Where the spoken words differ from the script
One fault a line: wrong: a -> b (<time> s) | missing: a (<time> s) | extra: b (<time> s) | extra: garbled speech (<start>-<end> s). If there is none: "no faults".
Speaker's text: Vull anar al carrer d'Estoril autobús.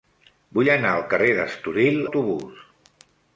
no faults